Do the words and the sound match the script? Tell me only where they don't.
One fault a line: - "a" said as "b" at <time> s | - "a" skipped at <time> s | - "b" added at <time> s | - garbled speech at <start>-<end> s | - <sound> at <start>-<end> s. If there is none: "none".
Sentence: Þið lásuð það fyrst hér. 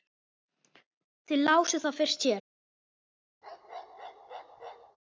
- bark at 3.4-5.0 s